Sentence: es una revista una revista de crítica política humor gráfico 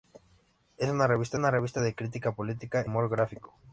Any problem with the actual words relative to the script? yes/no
no